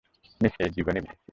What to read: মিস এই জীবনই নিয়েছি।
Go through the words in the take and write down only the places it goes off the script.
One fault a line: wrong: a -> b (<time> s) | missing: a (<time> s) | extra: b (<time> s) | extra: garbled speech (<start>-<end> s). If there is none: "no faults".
no faults